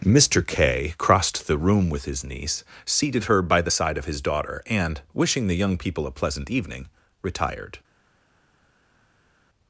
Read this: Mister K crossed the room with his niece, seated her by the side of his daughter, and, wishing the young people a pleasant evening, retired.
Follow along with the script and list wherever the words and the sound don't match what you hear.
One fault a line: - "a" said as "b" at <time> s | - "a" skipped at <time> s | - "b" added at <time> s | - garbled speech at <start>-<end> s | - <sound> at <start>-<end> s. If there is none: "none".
none